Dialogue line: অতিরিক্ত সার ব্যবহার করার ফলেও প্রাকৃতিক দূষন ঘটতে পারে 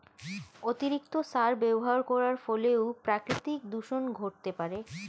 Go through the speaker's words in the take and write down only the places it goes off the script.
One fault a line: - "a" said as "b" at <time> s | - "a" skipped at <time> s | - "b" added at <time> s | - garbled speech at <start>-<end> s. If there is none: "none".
none